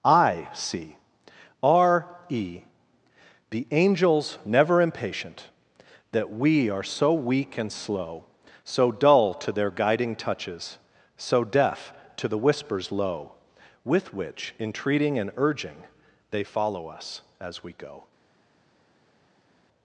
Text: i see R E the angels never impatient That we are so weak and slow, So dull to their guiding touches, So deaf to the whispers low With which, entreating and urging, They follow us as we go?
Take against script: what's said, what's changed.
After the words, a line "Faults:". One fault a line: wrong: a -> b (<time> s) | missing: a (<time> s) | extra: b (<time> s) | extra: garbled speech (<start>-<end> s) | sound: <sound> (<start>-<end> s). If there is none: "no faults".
i see R E the angels never impatient That we are so weak and slow, So dull to their guiding touches, So deaf to the whispers low With which, entreating and urging, They follow us as we go?
Faults:
no faults